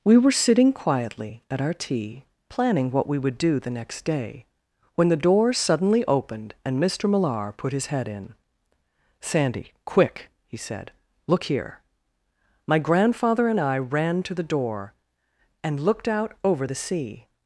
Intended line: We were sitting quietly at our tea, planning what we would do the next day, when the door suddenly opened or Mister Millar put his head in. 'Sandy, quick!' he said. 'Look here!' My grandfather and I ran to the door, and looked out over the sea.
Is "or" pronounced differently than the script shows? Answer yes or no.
yes